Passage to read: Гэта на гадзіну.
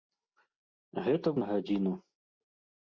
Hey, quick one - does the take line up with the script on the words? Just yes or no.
yes